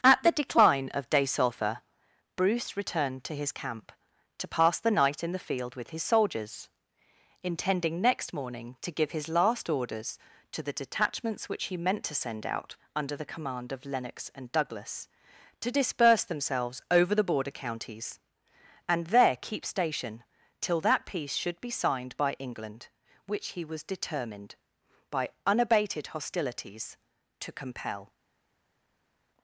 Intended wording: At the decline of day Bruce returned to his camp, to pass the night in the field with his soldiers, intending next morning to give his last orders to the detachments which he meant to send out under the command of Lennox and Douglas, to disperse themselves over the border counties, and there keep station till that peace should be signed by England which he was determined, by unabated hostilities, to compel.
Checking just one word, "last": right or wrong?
right